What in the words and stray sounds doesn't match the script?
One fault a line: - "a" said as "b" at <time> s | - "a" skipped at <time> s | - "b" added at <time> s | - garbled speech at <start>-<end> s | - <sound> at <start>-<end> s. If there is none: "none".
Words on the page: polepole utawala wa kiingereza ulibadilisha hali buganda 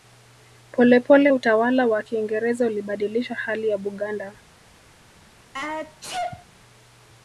- "ya" added at 3.7 s
- sneeze at 5.5-6.5 s